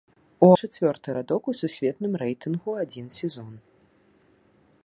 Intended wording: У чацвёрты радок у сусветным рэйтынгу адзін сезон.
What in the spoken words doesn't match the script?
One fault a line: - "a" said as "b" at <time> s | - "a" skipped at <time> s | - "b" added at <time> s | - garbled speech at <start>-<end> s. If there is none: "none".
none